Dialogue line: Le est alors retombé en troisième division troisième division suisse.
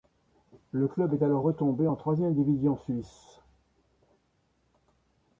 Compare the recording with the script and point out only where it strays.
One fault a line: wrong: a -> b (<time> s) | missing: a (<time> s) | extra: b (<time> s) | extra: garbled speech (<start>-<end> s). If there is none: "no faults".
extra: club (0.9 s)
missing: troisième division (2.8 s)